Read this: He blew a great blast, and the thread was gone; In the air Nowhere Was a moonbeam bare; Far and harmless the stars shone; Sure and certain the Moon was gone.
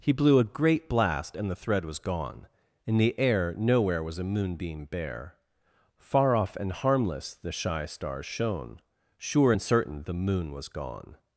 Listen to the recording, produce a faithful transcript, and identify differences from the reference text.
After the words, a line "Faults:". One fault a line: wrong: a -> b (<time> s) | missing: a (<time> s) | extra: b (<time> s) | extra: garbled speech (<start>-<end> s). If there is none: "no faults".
He blew a great blast, and the thread was gone; In the air Nowhere Was a moonbeam bare; Far off and harmless the shy stars shone; Sure and certain the Moon was gone.
Faults:
extra: off (6.3 s)
extra: shy (7.5 s)